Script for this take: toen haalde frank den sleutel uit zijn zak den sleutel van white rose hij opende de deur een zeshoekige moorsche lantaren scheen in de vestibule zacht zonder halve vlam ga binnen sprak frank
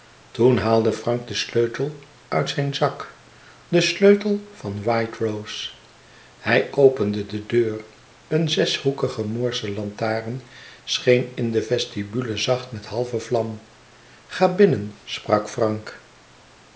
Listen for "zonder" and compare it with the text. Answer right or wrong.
wrong